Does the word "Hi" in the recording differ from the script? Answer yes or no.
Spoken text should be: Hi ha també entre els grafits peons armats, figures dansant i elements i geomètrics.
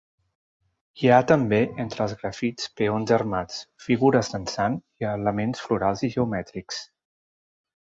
no